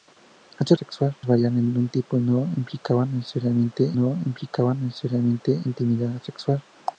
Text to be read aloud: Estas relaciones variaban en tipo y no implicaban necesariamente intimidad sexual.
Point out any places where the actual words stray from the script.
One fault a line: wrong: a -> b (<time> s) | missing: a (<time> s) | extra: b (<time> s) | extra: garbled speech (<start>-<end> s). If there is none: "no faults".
wrong: relaciones -> sexual (0.8 s)
extra: no implicaban necesariamente (3.9 s)